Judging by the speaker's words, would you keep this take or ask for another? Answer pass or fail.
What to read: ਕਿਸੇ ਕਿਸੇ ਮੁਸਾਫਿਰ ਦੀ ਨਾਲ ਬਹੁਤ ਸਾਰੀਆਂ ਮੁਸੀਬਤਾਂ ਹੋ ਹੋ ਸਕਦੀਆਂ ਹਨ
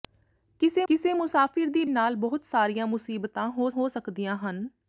pass